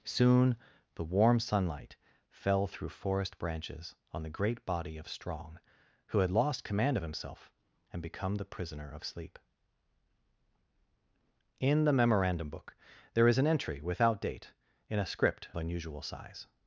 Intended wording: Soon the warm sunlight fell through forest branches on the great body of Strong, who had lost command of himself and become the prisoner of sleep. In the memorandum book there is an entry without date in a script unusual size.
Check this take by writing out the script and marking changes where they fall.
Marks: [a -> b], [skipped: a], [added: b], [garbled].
Soon the warm sunlight fell through forest branches on the great body of Strong, who had lost command of himself and become the prisoner of sleep. In the memorandum book there is an entry without date in a script unusual size.